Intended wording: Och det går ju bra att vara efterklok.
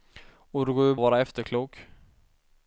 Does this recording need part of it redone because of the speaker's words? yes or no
yes